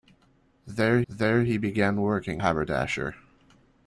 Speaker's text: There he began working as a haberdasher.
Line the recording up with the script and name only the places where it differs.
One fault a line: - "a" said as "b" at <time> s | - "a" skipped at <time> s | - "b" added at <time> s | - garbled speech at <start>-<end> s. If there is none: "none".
- "there" added at 1.1 s
- "as a" skipped at 2.4 s